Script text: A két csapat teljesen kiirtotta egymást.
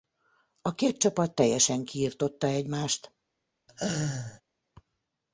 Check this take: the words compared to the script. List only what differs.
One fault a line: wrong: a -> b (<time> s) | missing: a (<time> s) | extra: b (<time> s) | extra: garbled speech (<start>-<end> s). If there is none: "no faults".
no faults